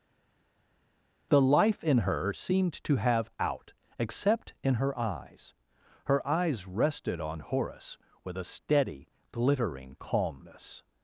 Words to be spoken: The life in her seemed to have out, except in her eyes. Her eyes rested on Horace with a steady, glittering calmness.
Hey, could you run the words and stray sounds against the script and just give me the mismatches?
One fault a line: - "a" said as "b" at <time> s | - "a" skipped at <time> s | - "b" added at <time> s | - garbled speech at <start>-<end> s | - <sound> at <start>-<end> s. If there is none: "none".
none